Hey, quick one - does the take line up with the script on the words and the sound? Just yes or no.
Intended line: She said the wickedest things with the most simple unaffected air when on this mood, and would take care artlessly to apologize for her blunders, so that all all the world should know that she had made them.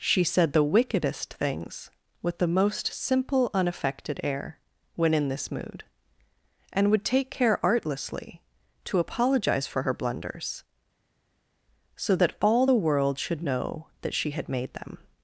no